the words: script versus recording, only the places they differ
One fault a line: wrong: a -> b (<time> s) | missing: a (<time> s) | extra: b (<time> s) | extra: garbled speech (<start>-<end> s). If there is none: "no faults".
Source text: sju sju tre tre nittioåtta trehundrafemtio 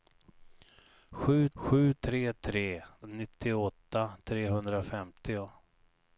no faults